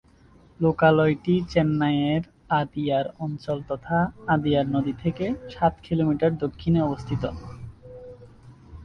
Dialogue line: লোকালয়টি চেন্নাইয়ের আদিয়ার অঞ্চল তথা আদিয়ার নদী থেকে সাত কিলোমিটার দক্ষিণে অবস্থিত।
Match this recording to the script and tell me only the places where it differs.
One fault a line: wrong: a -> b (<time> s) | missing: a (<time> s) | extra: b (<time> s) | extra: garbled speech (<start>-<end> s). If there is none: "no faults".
no faults